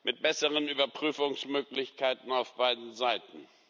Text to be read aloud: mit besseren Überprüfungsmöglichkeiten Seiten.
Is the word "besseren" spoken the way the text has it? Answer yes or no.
yes